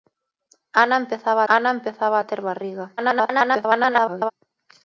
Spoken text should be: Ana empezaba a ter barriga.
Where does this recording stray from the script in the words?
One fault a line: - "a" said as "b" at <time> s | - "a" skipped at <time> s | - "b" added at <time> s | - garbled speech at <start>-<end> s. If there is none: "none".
- "ana empezaba" added at 1.5 s
- garbled speech at 3.0-4.3 s